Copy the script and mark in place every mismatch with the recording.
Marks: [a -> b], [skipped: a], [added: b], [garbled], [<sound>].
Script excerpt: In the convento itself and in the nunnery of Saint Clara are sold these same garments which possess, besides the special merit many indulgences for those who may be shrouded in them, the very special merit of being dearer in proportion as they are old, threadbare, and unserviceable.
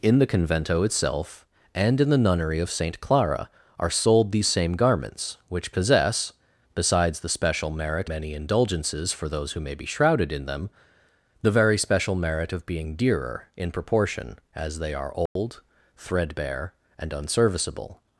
In the convento itself and in the nunnery of Saint Clara are sold these same garments which possess, besides the special merit many indulgences for those who may be shrouded in them, the very special merit of being dearer in proportion as they are old, [dropout] threadbare, and unserviceable.